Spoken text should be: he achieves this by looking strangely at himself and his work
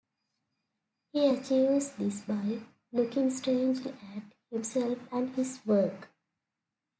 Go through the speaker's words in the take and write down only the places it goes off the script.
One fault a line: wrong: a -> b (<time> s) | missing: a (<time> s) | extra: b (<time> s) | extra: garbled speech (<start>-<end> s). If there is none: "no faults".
no faults